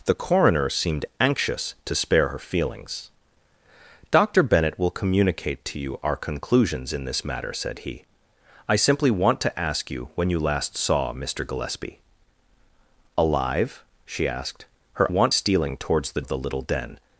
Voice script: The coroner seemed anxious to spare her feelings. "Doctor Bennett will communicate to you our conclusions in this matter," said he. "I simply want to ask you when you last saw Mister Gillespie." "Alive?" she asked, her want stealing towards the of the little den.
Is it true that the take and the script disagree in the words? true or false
false